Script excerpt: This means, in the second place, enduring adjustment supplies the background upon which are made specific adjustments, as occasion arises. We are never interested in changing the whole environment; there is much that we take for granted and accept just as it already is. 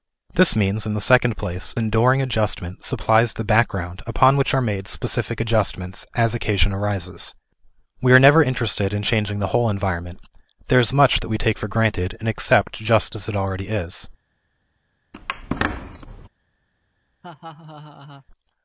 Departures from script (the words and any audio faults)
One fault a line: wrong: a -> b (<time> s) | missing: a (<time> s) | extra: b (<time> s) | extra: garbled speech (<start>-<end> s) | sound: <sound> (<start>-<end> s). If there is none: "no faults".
sound: squeak (15.1-16.3 s)
sound: laugh (17.2-18.3 s)